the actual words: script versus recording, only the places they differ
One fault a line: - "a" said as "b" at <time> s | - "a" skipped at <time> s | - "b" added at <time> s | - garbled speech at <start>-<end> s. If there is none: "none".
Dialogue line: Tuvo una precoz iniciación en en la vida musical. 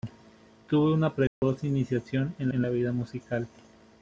none